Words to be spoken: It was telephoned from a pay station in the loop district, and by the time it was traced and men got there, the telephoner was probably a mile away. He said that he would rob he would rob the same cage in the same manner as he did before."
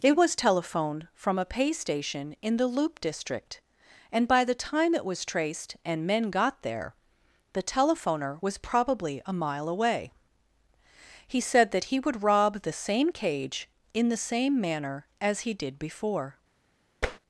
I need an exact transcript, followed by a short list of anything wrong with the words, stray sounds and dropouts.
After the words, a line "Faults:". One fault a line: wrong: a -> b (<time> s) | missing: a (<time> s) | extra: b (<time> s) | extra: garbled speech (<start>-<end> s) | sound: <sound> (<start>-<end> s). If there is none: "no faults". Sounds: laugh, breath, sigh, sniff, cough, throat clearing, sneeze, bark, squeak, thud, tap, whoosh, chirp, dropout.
It was telephoned from a pay station in the loop district, and by the time it was traced and men got there, the telephoner was probably a mile away. He said that he would rob the same cage in the same manner as he did before."
Faults:
missing: he would rob (12.6 s)
sound: tap (17.0-17.2 s)